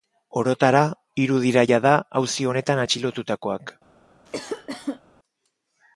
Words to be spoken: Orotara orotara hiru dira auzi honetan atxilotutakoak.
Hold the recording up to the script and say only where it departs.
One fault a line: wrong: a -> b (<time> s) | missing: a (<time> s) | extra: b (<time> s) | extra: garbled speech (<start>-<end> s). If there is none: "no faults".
missing: orotara (0.8 s)
extra: jada (1.7 s)